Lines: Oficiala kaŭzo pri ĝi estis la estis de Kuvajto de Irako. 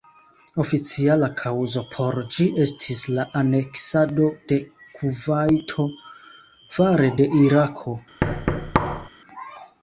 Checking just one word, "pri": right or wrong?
wrong